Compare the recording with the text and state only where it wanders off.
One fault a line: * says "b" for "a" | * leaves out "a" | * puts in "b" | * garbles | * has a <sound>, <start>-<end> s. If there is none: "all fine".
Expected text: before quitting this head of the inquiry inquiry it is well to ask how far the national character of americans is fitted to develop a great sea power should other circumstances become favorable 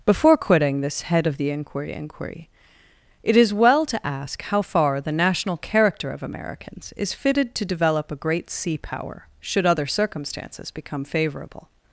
all fine